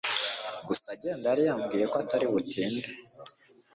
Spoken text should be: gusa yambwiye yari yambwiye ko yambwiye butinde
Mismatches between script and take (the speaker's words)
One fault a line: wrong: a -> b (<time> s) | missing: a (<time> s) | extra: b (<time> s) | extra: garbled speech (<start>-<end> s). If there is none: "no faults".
wrong: yambwiye -> agenda (0.9 s)
wrong: yambwiye -> atari (2.0 s)